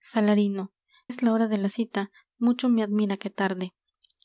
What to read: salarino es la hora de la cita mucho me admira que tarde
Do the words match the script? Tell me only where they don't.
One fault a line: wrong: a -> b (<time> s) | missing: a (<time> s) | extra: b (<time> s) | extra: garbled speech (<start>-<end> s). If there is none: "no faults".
no faults